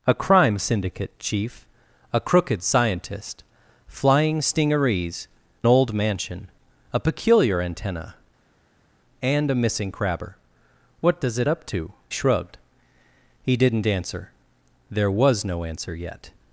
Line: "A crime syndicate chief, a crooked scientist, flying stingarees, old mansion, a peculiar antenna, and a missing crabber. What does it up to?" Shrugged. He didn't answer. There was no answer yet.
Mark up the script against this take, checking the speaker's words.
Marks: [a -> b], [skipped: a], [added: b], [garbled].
"A crime syndicate chief, a crooked scientist, flying stingarees, old mansion, a peculiar antenna, and a missing crabber. What does it up to?" Shrugged. He didn't answer. There was no answer yet.